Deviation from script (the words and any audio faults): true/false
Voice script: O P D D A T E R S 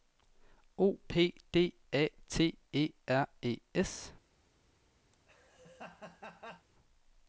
true